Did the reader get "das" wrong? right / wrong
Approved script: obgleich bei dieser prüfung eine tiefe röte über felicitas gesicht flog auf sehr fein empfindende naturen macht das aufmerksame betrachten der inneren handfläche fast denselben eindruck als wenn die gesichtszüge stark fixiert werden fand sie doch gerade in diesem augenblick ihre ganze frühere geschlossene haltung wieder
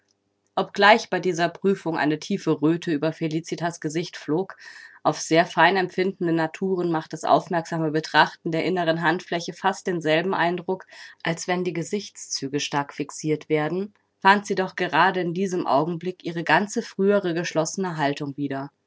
right